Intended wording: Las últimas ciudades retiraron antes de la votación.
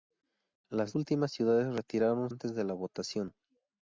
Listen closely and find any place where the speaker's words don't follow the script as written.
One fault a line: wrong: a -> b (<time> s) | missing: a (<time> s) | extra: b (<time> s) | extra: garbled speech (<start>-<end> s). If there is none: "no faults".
no faults